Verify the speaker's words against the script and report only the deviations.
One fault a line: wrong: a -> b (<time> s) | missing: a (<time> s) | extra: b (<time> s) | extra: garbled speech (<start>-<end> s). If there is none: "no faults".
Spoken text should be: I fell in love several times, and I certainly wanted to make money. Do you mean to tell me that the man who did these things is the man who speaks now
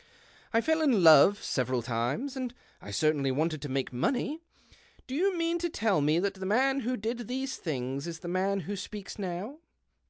no faults